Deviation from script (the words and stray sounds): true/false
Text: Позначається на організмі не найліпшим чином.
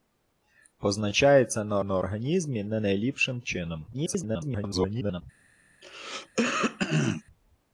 true